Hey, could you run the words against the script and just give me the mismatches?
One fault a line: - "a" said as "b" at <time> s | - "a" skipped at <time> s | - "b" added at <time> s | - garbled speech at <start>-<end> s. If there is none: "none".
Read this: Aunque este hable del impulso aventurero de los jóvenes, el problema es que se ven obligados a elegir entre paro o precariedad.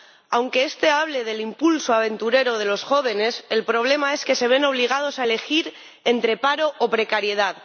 none